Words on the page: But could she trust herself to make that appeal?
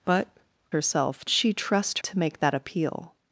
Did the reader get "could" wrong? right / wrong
wrong